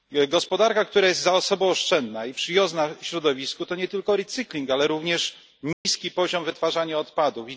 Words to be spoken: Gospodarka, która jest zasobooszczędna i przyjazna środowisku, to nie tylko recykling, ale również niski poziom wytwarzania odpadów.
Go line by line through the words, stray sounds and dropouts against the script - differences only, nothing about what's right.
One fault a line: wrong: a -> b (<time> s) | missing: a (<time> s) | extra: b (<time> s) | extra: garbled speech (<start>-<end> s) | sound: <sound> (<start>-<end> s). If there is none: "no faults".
sound: dropout (5.7-5.9 s)